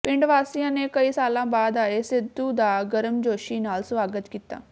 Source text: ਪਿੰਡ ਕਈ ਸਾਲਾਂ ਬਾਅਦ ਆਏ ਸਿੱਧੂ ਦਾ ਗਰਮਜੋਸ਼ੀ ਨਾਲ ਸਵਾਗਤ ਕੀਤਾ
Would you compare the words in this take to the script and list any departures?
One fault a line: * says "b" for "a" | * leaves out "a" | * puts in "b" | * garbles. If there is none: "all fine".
* puts in "ਵਾਸੀਆਂ ਨੇ"